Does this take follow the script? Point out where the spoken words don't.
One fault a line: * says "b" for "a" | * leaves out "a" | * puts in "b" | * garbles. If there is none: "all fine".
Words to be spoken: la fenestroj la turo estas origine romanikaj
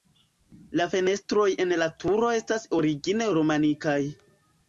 * puts in "en"